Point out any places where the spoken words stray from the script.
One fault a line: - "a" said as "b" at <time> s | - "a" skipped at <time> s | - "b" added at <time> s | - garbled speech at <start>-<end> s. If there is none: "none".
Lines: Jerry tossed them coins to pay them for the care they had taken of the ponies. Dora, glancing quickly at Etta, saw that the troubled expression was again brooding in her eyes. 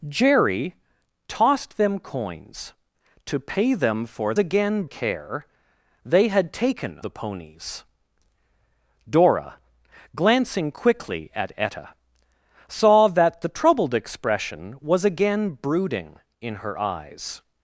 - "the" said as "again" at 4.4 s
- "of" skipped at 7.0 s